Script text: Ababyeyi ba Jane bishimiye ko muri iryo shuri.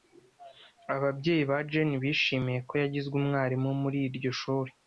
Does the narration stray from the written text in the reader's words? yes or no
yes